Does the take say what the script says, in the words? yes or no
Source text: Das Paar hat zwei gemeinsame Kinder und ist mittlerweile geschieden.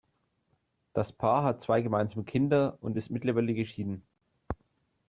yes